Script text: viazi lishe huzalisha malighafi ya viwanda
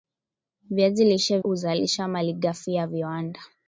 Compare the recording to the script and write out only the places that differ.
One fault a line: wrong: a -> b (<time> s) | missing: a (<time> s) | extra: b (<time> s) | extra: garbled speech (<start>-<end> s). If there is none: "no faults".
no faults